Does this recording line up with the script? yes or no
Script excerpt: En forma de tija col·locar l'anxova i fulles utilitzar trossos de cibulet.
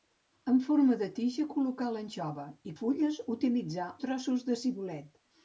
yes